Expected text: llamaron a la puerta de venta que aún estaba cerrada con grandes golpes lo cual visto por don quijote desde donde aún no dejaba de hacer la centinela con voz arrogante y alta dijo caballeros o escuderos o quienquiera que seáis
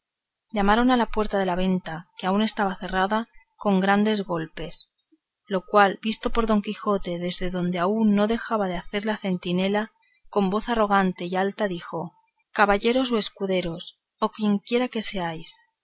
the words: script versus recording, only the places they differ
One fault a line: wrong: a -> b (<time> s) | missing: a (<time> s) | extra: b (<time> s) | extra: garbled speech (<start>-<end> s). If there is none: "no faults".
extra: la (1.4 s)